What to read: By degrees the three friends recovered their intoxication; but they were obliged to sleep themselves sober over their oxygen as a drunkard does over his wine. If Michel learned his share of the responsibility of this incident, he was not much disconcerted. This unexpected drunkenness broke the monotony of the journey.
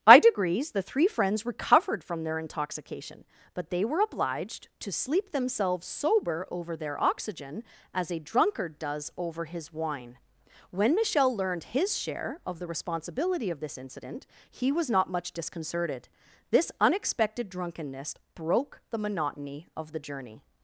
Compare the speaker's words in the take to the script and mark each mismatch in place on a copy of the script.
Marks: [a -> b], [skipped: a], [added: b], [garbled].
By degrees the three friends recovered [added: from] their intoxication; but they were obliged to sleep themselves sober over their oxygen as a drunkard does over his wine. [If -> When] Michel learned his share of the responsibility of this incident, he was not much disconcerted. This unexpected drunkenness broke the monotony of the journey.